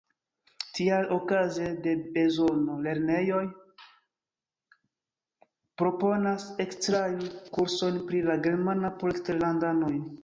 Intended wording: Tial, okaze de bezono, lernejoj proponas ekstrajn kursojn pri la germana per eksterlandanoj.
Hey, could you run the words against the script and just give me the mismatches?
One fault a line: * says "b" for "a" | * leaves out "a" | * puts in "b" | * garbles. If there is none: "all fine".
* says "por" for "per"